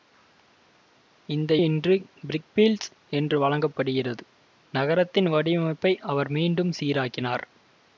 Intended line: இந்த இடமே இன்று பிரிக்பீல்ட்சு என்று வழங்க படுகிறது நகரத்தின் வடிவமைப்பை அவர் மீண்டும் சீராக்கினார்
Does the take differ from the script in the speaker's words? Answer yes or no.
yes